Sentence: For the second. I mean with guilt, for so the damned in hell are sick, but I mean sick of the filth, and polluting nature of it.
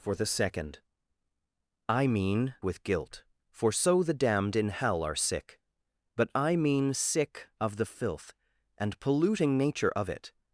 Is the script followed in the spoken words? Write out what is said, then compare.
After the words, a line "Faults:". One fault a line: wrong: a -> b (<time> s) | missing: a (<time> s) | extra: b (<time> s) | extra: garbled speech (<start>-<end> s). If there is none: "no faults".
For the second. I mean with guilt, for so the damned in hell are sick, but I mean sick of the filth, and polluting nature of it.
Faults:
no faults